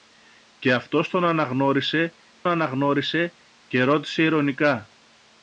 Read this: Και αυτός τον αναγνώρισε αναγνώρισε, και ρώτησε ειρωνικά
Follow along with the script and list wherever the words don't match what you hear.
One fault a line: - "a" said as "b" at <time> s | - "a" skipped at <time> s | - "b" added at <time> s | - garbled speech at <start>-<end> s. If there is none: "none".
none